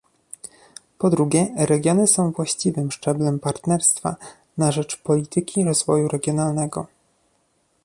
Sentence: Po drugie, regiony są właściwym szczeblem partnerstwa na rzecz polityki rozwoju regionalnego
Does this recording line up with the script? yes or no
yes